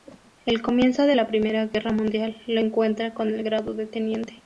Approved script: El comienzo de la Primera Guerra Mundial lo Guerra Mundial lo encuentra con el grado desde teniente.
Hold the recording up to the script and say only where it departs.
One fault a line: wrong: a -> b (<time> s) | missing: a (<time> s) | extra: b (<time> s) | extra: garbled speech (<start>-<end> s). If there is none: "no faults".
missing: Guerra Mundial lo (2.6 s)
wrong: desde -> de (3.7 s)